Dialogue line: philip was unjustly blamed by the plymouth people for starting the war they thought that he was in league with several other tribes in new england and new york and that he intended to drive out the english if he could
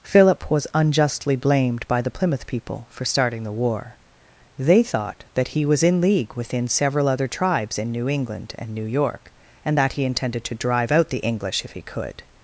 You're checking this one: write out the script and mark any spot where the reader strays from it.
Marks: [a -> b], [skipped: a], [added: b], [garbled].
philip was unjustly blamed by the plymouth people for starting the war they thought that he was in league [with -> within] several other tribes in new england and new york and that he intended to drive out the english if he could